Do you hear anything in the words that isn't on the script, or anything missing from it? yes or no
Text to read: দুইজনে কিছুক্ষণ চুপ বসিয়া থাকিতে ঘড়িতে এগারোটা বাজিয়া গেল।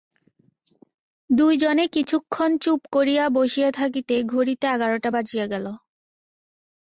yes